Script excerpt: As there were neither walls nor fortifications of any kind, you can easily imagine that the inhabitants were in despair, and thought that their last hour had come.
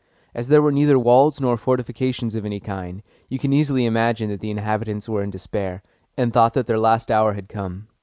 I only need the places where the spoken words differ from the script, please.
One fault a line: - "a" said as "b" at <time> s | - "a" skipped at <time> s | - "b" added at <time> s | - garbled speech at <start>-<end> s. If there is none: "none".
none